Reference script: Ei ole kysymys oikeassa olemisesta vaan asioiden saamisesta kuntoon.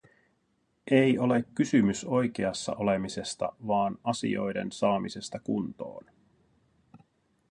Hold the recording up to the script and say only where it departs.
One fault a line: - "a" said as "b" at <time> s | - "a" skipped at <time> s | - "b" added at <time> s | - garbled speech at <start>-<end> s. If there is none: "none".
none